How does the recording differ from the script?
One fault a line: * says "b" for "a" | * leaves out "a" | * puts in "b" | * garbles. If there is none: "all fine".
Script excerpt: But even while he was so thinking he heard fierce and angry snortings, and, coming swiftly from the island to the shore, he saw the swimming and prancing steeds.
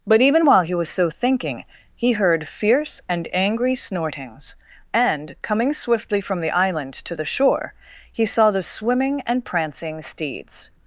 all fine